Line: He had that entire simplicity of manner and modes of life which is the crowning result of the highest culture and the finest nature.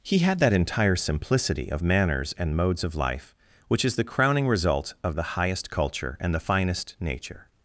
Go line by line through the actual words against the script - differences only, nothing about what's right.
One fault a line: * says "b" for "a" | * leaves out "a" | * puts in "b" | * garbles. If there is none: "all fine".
* says "manners" for "manner"